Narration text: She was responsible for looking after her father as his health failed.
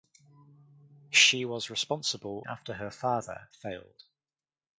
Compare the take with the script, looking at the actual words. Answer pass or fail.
fail